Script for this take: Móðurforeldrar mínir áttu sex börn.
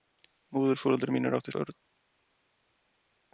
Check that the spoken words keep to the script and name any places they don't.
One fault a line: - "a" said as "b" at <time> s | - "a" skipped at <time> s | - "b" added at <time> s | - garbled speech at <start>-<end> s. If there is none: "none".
- "sex" skipped at 1.5 s